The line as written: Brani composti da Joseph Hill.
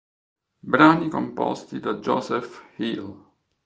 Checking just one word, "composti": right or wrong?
right